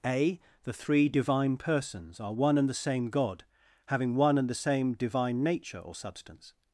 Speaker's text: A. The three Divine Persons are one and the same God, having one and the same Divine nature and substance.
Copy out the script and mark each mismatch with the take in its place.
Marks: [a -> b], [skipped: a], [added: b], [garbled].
A. The three Divine Persons are one and the same God, having one and the same Divine nature [and -> or] substance.